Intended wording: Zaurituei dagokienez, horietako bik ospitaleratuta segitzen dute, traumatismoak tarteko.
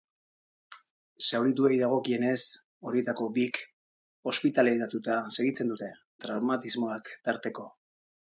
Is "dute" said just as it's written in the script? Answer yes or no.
yes